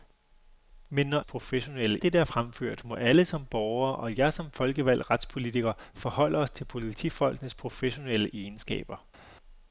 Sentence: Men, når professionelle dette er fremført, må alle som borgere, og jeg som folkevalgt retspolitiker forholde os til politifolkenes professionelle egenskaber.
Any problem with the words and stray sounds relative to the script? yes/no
no